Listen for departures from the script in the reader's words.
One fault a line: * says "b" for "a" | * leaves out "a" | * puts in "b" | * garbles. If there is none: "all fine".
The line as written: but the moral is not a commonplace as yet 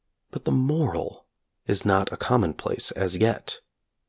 all fine